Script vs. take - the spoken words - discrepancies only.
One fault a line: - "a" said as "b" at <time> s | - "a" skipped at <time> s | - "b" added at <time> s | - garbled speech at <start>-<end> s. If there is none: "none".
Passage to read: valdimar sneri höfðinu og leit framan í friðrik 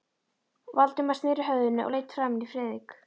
none